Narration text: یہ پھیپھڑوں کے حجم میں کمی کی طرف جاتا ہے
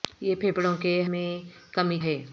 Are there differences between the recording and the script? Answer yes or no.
yes